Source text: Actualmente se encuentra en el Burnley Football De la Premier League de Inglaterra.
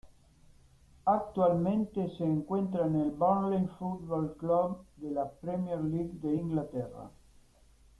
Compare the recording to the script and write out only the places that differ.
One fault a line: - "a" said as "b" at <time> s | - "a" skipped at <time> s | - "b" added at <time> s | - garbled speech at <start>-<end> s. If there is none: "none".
- "Club" added at 4.3 s